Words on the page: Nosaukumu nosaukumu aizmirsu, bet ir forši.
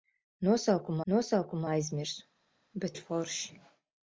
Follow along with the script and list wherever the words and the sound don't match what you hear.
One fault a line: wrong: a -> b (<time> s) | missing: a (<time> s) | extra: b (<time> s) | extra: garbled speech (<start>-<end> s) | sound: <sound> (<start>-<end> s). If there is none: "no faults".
no faults